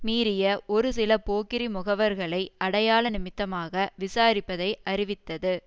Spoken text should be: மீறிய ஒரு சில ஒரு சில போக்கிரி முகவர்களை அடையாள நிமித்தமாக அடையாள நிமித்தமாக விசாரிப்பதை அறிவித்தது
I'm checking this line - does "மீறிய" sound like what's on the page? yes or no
yes